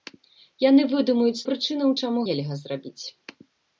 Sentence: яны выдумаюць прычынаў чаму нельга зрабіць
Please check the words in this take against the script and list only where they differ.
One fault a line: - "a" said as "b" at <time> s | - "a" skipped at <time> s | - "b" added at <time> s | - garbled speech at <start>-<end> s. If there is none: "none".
none